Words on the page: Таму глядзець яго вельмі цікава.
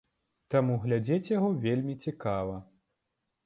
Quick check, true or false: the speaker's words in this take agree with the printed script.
true